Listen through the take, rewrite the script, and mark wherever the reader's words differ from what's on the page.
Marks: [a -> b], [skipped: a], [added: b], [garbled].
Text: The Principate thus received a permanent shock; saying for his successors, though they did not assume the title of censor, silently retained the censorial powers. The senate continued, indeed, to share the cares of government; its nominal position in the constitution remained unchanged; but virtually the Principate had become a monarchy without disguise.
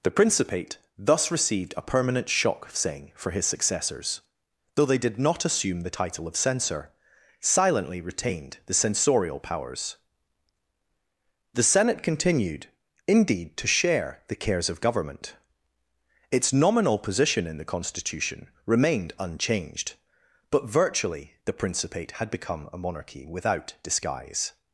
The Principate thus received a permanent shock; saying for his successors, though they did not assume the title of censor, silently retained the censorial powers. The senate continued, indeed, to share the cares of government; its nominal position in the constitution remained unchanged; but virtually the Principate had become a monarchy without disguise.